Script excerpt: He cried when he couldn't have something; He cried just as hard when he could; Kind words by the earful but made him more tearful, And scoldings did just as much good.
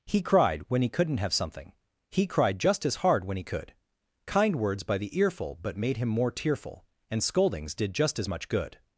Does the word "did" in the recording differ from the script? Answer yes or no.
no